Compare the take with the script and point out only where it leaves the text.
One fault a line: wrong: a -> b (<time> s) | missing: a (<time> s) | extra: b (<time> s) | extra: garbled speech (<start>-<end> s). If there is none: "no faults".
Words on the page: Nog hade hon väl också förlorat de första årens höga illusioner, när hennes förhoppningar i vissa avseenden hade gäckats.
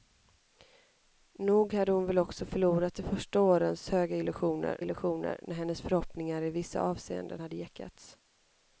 extra: illusioner (4.8 s)